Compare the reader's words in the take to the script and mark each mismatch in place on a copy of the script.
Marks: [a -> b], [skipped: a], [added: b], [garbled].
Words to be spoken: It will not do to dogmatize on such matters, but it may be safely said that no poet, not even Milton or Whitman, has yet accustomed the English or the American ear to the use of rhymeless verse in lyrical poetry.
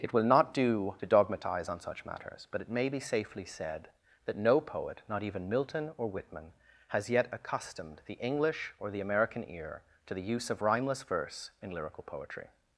It will not do to dogmatize on such matters, but it may be safely said that no poet, not even Milton or Whitman, has yet accustomed the English or the American ear to the use of rhymeless verse in lyrical poetry.